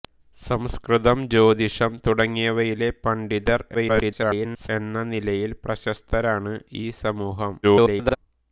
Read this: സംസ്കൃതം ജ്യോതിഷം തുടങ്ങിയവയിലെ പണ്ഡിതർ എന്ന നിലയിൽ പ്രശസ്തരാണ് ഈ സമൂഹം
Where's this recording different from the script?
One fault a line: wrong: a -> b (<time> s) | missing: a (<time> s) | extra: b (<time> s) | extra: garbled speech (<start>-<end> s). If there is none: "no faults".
extra: garbled speech (3.7-4.7 s)
extra: garbled speech (7.6-8.2 s)